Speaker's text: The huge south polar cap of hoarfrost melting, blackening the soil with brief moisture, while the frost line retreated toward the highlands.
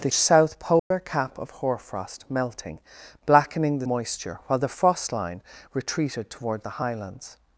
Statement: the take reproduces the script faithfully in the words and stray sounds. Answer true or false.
false